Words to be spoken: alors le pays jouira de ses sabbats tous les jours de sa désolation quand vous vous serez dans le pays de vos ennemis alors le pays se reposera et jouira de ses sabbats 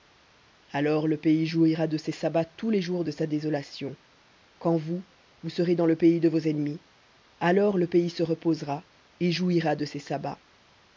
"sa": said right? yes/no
yes